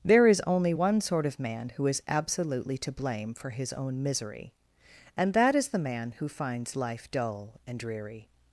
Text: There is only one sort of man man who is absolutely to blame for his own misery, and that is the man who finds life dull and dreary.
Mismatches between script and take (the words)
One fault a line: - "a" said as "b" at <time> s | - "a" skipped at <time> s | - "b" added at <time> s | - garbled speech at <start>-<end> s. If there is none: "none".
- "man" skipped at 1.7 s